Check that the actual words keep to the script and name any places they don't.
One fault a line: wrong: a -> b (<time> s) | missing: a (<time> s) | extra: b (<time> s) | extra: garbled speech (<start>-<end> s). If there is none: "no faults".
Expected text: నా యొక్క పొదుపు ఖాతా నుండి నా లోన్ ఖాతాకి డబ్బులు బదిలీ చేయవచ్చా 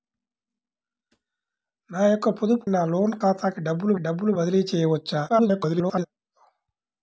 missing: ఖాతా నుండి (2.6 s)
extra: డబ్బులు (4.0 s)
extra: garbled speech (5.3-6.1 s)